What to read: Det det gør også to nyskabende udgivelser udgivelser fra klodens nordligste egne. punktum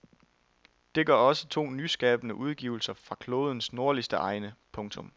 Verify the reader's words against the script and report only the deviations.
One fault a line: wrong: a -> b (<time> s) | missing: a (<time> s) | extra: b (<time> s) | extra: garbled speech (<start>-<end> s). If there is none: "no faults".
missing: det (1.1 s)
missing: udgivelser (2.9 s)